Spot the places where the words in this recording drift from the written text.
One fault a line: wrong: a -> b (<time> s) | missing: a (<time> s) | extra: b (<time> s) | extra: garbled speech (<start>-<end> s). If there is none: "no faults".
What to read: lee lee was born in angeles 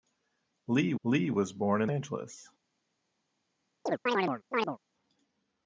no faults